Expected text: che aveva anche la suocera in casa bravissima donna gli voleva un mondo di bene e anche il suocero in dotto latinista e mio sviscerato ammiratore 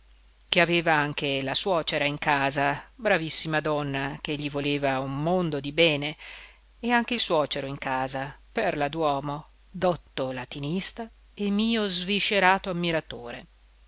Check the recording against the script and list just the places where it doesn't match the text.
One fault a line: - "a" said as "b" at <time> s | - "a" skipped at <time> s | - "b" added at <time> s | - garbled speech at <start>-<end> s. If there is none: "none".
- "che" added at 4.2 s
- "casa perla d'uomo" added at 7.8 s